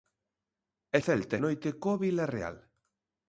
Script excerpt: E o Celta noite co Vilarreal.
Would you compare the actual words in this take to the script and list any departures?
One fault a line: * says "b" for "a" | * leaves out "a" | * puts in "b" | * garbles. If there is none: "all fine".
all fine